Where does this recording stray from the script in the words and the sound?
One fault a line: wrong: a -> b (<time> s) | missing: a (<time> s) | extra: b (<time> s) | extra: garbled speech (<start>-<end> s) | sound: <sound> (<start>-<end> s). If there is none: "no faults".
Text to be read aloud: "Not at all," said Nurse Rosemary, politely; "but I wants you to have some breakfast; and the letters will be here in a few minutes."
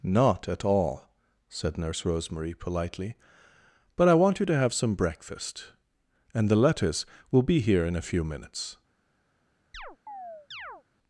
wrong: wants -> want (4.2 s)
sound: chirp (9.7-10.8 s)